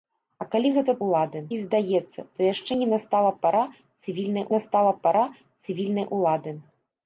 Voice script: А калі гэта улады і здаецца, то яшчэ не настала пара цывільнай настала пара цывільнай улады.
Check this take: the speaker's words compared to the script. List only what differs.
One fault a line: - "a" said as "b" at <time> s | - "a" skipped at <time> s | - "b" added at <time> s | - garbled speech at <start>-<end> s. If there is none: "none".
none